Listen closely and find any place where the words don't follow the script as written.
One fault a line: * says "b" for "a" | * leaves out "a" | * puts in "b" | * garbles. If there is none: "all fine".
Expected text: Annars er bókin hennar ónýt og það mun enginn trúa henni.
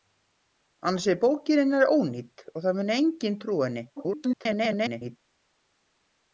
* garbles